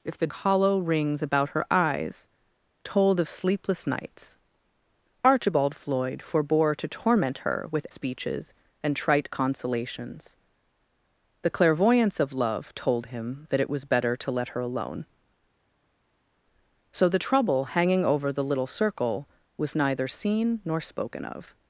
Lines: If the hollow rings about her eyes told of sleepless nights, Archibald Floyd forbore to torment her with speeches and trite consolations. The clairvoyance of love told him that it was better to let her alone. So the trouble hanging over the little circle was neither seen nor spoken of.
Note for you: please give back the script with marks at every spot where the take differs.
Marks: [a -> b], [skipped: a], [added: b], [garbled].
If the hollow rings about her eyes told of sleepless nights, Archibald Floyd forbore to torment her with speeches and trite consolations. The clairvoyance of love told him that it was better to let her alone. So the trouble hanging over the little circle was neither seen nor spoken of.